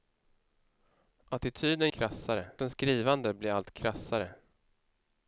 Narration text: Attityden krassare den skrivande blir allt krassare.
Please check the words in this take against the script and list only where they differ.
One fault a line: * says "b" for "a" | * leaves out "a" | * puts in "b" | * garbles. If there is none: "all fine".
all fine